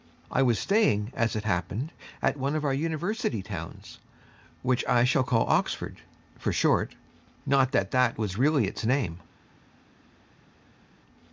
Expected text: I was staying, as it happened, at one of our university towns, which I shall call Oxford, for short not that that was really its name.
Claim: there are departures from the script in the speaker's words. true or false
false